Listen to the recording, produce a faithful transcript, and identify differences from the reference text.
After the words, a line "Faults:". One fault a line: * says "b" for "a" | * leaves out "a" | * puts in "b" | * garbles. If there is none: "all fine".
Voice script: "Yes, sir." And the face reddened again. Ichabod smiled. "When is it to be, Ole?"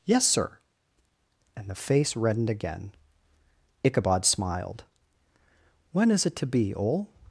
"Yes, sir." And the face reddened again. Ichabod smiled. "When is it to be, Ole?"
Faults:
all fine